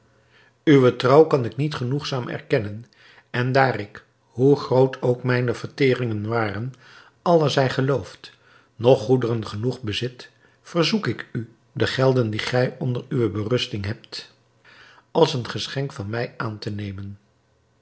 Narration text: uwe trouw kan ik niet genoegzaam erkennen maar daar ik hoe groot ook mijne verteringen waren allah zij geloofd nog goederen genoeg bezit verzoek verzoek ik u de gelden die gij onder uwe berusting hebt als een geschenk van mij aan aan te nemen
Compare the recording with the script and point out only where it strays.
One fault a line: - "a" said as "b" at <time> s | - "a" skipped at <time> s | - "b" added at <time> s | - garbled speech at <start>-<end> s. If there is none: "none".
- "maar" said as "en" at 3.3 s
- "verzoek" skipped at 11.1 s
- "aan" skipped at 16.6 s